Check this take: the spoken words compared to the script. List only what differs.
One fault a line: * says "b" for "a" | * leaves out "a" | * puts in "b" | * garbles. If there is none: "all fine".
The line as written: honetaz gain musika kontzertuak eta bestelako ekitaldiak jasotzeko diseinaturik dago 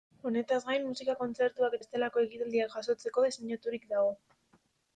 * leaves out "eta"